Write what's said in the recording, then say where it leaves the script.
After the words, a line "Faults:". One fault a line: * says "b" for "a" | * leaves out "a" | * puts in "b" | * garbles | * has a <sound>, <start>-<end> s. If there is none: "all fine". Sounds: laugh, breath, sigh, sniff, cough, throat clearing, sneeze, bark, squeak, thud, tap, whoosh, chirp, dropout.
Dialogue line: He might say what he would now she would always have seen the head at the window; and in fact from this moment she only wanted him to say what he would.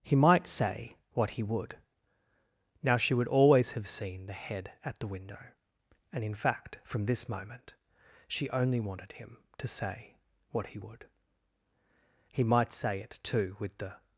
He might say what he would now she would always have seen the head at the window; and in fact from this moment she only wanted him to say what he would. He might say it too with the
Faults:
* puts in "He might say it too with the"